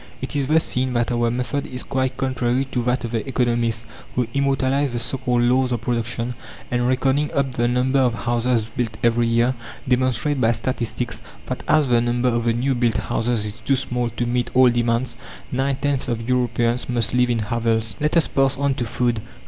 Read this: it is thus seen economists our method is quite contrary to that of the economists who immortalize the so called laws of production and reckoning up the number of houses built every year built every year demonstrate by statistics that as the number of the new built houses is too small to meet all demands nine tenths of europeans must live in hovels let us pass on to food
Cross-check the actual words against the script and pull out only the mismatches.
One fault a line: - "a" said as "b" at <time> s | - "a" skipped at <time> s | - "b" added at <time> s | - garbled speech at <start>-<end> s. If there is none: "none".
- "economists" said as "that" at 0.9 s
- "built every year" skipped at 9.6 s